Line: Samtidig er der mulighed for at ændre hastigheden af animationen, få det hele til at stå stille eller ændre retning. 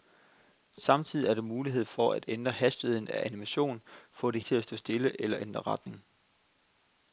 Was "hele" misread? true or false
true